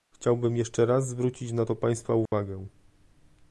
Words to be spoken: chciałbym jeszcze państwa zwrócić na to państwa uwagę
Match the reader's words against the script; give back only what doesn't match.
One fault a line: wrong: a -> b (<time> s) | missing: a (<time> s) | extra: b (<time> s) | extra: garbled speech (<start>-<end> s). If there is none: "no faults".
wrong: państwa -> raz (0.8 s)